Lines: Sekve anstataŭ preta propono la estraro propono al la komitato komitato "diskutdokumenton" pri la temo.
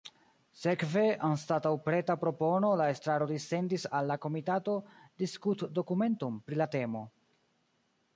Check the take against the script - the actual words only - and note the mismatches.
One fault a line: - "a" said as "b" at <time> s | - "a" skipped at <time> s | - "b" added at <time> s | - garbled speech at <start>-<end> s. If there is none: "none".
- "propono" said as "dissendis" at 3.3 s
- "komitato" skipped at 4.8 s